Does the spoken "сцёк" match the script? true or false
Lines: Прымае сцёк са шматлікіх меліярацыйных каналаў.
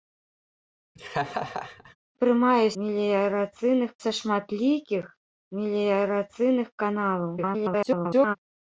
false